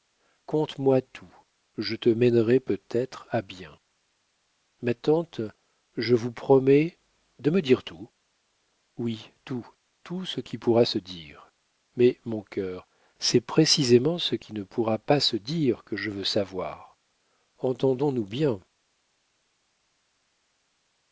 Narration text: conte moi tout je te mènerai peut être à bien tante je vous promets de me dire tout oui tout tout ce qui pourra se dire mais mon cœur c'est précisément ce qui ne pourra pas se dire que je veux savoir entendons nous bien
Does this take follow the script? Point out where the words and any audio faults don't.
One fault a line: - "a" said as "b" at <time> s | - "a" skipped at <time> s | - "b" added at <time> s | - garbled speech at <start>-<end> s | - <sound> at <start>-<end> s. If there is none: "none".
- "ma" added at 4.8 s